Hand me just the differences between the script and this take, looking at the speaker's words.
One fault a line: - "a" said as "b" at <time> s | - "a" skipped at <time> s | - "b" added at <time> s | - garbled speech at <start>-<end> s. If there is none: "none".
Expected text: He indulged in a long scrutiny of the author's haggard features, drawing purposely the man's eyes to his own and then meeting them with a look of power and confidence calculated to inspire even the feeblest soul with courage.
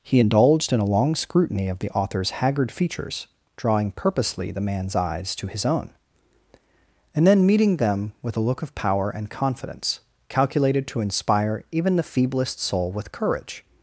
none